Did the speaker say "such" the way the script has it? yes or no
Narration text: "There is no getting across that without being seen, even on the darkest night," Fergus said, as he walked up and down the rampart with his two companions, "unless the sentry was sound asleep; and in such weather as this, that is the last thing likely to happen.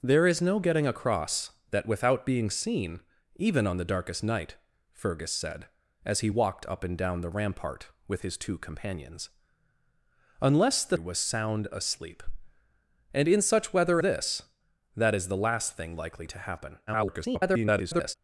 yes